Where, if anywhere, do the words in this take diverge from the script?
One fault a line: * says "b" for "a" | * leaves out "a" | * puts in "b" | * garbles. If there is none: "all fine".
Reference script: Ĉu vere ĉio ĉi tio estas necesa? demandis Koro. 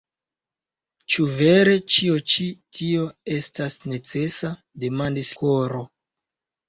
all fine